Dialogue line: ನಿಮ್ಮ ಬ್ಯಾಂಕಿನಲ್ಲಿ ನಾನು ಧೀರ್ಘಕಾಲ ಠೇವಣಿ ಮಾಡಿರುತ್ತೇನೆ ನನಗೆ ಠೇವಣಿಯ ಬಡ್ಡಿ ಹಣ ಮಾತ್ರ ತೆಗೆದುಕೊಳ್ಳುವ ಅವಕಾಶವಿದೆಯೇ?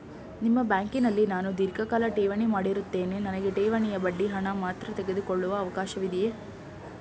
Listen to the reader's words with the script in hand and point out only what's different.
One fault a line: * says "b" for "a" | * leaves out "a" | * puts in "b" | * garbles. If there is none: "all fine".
all fine